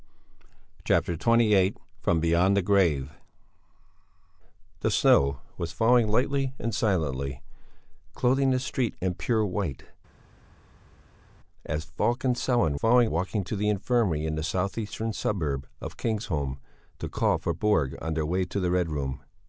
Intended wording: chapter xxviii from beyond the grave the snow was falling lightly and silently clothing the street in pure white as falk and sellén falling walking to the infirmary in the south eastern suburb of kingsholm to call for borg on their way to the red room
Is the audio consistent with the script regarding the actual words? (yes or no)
yes